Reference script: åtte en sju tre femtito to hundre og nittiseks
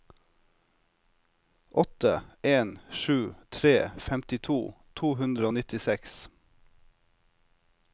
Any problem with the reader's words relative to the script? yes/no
no